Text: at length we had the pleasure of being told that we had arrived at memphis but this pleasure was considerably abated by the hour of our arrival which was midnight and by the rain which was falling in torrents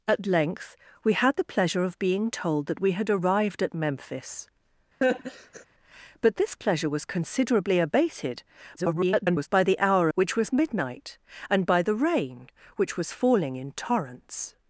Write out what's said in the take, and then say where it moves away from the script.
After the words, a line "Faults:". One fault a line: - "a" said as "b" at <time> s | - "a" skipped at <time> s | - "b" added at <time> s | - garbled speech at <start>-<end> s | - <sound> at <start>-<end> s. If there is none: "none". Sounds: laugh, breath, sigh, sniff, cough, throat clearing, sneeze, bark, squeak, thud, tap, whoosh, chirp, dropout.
at length we had the pleasure of being told that we had arrived at memphis but this pleasure was considerably abated [garbled] by the hour which was midnight and by the rain which was falling in torrents
Faults:
- laugh at 5.0-5.7 s
- garbled speech at 8.8-9.5 s
- "of our arrival" skipped at 10.1 s